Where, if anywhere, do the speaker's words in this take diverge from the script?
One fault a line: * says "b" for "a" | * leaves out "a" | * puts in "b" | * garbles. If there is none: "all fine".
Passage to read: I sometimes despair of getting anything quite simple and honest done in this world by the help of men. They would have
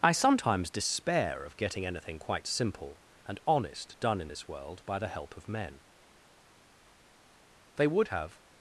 all fine